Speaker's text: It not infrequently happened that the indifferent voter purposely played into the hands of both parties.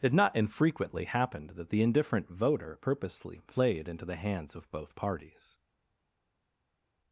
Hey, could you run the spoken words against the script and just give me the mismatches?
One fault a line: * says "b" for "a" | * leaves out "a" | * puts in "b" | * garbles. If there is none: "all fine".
all fine